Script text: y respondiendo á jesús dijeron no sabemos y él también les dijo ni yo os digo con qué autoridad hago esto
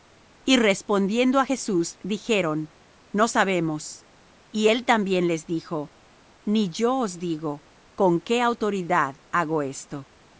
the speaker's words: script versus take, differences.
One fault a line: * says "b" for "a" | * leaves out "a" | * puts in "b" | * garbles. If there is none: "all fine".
all fine